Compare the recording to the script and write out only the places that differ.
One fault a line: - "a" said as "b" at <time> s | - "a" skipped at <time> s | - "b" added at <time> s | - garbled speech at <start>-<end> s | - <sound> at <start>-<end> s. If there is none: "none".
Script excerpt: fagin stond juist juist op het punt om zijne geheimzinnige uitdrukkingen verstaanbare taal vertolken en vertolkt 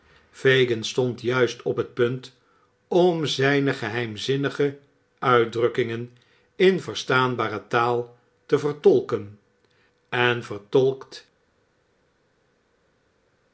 - "juist" skipped at 1.6 s
- "in" added at 6.6 s
- "te" added at 8.5 s